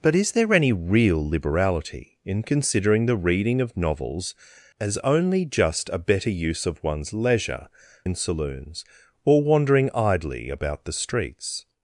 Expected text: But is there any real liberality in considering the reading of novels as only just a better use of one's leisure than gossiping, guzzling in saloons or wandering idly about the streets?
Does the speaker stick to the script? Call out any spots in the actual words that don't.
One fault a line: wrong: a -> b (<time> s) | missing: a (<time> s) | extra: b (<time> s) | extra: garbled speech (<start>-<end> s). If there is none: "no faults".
missing: than gossiping guzzling (7.7 s)